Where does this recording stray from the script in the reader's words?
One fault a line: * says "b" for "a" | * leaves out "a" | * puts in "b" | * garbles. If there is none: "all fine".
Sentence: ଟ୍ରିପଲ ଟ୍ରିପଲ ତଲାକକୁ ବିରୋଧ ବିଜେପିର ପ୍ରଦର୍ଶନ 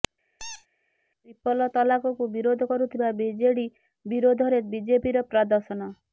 * leaves out "ଟ୍ରିପଲ"
* puts in "କରୁଥିବା ବିଜେଡି ବିରୋଧରେ"